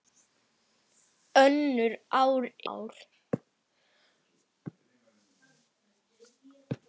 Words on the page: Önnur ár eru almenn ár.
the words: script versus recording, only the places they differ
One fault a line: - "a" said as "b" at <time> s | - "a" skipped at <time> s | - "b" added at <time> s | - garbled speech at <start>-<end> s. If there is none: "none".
- "eru almenn" skipped at 2.4 s